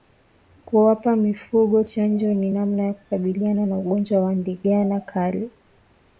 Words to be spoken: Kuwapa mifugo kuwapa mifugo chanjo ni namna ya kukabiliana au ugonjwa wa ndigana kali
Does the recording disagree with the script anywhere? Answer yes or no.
yes